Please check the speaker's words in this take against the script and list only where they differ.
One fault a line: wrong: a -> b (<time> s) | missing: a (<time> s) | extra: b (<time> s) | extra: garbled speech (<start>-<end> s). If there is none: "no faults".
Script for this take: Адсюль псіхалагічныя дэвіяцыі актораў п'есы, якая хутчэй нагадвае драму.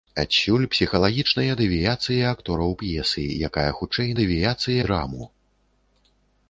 wrong: нагадвае -> дэвіяцыі (4.2 s)